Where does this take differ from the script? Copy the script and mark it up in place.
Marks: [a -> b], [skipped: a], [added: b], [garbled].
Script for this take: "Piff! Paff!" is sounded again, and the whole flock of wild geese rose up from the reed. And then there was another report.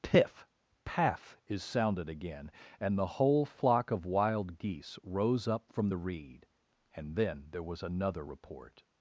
"Piff! Paff!" is sounded again, and the whole flock of wild geese rose up from the reed. And then there was another report.